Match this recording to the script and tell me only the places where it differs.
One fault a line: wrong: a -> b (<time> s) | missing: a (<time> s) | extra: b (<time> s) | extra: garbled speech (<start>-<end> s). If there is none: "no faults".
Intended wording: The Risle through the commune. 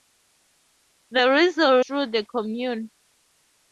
no faults